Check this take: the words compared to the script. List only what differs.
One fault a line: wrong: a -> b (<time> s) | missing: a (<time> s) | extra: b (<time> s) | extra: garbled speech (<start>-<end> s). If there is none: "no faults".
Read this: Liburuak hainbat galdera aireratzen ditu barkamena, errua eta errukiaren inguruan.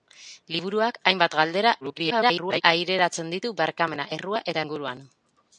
extra: garbled speech (1.8-2.6 s)
missing: errukiaren (4.6 s)